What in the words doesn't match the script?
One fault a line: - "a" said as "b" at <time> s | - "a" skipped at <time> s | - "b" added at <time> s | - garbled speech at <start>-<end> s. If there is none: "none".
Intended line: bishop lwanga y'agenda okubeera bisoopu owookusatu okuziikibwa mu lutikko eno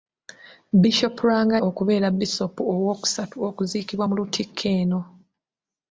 - "y'agenda" skipped at 1.6 s